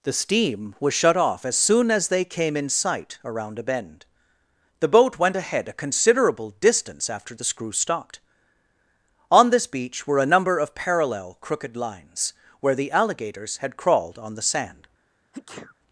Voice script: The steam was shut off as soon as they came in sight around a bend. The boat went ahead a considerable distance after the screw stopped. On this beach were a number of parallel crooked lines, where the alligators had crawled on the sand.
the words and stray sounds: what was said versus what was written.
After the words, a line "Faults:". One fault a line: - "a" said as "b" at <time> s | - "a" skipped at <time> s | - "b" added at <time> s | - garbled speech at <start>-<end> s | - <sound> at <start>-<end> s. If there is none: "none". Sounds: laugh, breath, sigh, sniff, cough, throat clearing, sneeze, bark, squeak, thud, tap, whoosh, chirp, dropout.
The steam was shut off as soon as they came in sight around a bend. The boat went ahead a considerable distance after the screw stopped. On this beach were a number of parallel crooked lines, where the alligators had crawled on the sand.
Faults:
- sneeze at 15.3-15.8 s